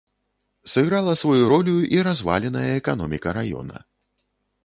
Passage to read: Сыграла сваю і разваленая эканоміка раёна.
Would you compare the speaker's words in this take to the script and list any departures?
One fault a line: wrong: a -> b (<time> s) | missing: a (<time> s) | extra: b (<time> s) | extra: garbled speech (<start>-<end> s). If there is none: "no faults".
extra: ролю (1.5 s)